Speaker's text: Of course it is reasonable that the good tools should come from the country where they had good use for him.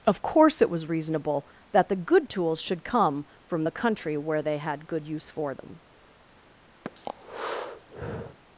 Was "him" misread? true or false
true